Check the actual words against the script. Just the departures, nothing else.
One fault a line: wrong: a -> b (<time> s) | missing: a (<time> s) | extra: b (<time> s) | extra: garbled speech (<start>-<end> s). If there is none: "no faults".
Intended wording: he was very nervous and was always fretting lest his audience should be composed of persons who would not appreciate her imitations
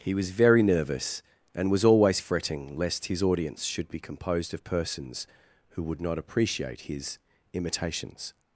wrong: her -> his (6.8 s)